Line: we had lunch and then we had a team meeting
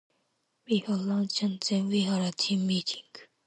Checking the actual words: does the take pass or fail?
pass